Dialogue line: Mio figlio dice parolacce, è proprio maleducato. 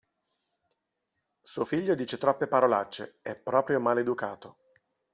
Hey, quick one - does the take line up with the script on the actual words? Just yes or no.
no